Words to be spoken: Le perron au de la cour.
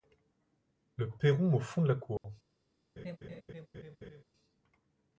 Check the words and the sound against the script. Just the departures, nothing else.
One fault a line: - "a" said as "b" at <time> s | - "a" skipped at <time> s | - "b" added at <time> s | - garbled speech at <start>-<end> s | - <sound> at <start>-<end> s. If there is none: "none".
- "fond" added at 1.6 s
- dropout at 2.2-2.2 s
- laugh at 3.0-4.2 s